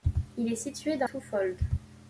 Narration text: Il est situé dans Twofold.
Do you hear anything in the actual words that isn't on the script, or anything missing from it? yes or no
no